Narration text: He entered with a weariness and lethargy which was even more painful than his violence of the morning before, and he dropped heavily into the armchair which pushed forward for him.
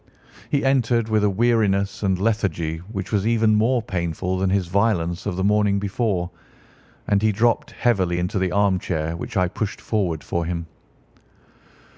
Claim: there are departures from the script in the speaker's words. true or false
true